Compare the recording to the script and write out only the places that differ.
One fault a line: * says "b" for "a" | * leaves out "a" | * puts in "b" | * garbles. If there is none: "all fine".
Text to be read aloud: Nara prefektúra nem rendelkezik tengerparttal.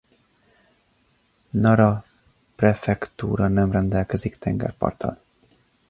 all fine